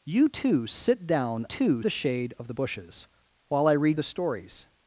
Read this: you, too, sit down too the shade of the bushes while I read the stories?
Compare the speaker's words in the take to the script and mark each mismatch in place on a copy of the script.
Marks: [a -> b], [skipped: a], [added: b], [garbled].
you, too, sit down too the shade of the bushes while I read the stories?